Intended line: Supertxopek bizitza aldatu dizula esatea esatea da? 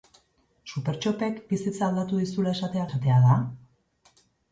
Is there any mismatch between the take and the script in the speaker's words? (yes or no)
no